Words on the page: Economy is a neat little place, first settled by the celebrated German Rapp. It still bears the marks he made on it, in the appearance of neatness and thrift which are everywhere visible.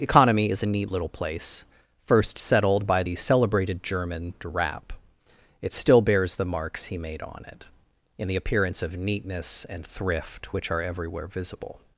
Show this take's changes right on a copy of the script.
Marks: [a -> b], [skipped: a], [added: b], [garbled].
Economy is a neat little place, first settled by the celebrated German Rapp. It still bears the marks he made on it, in the appearance of neatness and thrift which are everywhere visible.